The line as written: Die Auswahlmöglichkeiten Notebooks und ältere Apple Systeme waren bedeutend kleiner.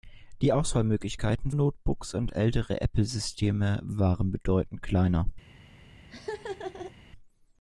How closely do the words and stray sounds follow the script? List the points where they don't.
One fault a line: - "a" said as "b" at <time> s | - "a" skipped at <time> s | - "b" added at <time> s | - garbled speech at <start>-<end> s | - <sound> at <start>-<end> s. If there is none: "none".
- laugh at 6.1-6.9 s